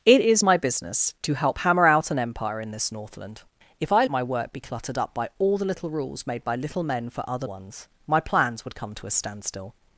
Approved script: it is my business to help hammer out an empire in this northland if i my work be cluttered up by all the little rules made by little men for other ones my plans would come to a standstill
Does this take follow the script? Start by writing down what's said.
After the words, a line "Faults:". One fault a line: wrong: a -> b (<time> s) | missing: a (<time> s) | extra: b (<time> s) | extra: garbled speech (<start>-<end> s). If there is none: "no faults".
it is my business to help hammer out an empire in this northland if i my work be cluttered up by all the little rules made by little men for other ones my plans would come to a standstill
Faults:
no faults